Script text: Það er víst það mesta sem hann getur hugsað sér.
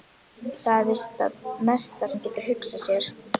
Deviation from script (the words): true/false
true